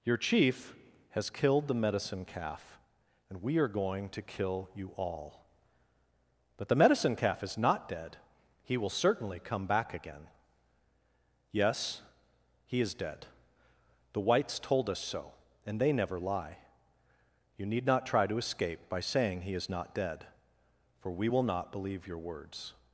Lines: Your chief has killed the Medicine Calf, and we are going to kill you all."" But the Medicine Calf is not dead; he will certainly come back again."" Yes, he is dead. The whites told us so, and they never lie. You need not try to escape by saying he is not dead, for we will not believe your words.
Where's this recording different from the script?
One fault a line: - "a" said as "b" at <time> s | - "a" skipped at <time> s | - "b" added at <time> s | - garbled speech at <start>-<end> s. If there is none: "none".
none